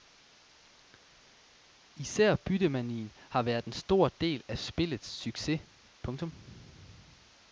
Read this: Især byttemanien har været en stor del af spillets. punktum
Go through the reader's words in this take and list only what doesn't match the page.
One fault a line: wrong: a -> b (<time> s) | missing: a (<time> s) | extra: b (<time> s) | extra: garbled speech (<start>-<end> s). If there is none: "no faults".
extra: succes (5.0 s)